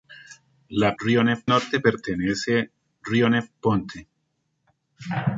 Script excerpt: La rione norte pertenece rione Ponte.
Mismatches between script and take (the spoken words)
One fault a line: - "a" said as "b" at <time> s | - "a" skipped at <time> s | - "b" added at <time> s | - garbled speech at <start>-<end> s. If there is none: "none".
none